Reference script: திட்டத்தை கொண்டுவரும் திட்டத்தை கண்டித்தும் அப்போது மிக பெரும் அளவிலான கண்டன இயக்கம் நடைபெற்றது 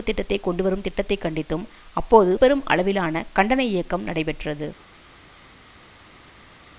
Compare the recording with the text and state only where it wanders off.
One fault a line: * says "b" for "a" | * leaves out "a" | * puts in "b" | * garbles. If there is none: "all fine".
* leaves out "மிக"